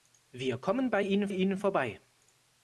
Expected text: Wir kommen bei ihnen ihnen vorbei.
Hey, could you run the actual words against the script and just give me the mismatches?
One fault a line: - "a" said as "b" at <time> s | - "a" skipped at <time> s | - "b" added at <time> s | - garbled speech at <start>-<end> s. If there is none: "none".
none